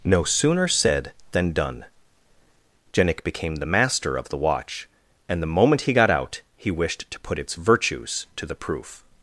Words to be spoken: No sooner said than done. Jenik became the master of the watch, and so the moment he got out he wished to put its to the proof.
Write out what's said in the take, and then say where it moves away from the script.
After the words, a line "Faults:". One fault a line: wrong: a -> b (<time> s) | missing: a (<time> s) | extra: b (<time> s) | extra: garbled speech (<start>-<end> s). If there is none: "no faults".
No sooner said than done. Jenik became the master of the watch, and the moment he got out he wished to put its virtues to the proof.
Faults:
missing: so (5.4 s)
extra: virtues (7.5 s)